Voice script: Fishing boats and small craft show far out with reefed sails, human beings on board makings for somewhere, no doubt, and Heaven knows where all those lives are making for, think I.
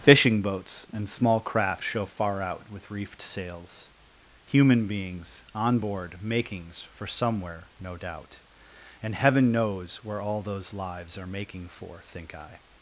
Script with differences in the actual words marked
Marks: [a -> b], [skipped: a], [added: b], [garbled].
Fishing boats and small craft show far out with reefed sails, human beings on board makings for somewhere, no doubt, and Heaven knows where all those lives are making for, think I.